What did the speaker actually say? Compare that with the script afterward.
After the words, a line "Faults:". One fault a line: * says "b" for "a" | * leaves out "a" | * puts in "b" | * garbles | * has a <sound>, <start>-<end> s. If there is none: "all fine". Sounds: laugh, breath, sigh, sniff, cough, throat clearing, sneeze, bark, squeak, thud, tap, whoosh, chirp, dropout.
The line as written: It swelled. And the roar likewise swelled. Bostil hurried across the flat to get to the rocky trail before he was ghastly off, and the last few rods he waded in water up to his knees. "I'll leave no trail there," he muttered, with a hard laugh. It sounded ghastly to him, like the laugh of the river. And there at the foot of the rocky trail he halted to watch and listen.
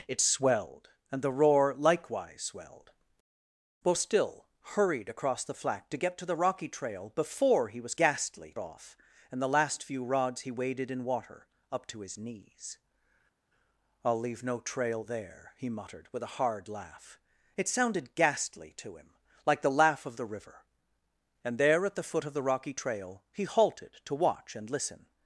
It swelled. And the roar likewise swelled. Bostil hurried across the flat to get to the rocky trail before he was ghastly off, and the last few rods he waded in water up to his knees. "I'll leave no trail there," he muttered, with a hard laugh. It sounded ghastly to him, like the laugh of the river. And there at the foot of the rocky trail he halted to watch and listen.
Faults:
all fine